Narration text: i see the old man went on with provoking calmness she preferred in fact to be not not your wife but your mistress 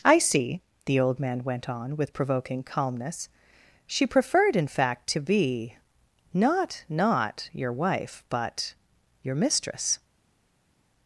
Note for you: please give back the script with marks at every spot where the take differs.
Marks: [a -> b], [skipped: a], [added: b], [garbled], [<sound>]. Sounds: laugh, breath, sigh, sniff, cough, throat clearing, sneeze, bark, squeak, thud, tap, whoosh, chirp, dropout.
i see the old man went on with provoking calmness she preferred in fact to be not not your wife but your mistress